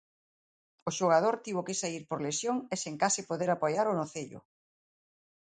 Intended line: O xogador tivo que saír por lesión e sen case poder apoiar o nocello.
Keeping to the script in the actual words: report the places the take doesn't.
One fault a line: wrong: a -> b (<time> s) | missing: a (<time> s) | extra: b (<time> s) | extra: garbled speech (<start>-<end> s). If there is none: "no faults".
no faults